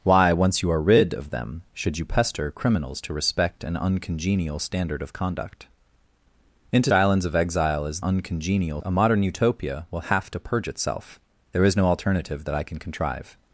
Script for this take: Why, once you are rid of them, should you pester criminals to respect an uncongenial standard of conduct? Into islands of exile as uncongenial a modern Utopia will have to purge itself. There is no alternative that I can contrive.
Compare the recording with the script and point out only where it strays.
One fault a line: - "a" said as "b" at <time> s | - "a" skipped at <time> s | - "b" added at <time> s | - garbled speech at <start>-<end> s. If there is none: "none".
none